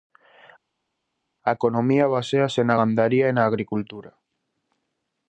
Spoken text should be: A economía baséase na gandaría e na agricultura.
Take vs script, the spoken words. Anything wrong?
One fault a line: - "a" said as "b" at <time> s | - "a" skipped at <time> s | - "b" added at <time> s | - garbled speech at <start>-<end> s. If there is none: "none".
none